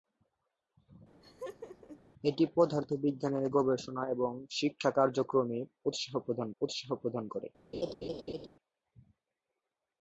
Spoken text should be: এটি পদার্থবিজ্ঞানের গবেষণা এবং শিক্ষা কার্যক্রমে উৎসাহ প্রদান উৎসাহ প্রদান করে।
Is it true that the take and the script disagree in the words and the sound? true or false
true